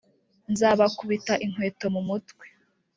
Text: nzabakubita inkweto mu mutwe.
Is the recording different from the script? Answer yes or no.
no